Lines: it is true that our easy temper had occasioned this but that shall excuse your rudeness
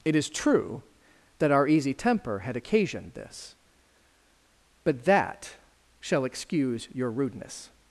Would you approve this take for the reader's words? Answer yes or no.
yes